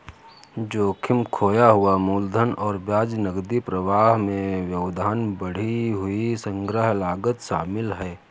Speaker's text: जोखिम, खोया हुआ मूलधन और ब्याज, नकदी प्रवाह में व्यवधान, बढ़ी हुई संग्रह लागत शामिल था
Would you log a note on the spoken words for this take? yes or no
yes